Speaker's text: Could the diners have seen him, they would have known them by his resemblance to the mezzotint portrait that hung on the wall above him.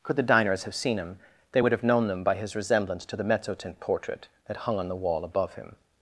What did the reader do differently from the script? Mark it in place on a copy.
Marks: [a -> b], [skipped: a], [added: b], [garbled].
Could the diners have seen him, they would have known them by his resemblance to the mezzotint portrait that hung on the wall above him.